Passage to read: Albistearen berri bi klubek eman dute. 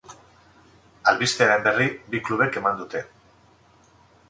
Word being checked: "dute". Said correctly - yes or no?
yes